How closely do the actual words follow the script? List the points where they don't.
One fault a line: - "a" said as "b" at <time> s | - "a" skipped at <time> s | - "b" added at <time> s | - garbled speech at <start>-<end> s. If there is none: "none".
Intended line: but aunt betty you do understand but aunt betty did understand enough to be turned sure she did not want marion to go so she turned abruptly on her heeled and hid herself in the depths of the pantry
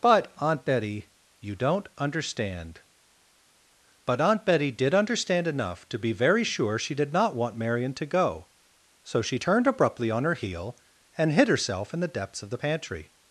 - "do" said as "don't" at 1.6 s
- "turned" said as "very" at 6.1 s
- "heeled" said as "heel" at 10.3 s